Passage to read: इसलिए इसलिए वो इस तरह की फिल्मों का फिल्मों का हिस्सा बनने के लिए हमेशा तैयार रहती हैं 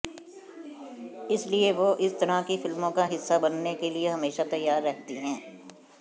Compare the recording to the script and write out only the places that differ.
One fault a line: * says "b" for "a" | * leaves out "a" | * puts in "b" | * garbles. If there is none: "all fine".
* leaves out "इसलिए"
* leaves out "फिल्मों का"